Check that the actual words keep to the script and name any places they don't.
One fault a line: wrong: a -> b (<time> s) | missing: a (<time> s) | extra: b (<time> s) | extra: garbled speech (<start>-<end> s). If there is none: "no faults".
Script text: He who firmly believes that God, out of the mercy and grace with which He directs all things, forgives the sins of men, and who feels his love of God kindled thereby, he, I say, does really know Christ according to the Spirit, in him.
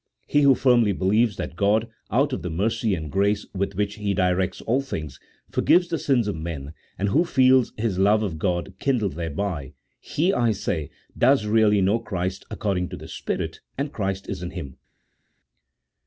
extra: and Christ is (13.8 s)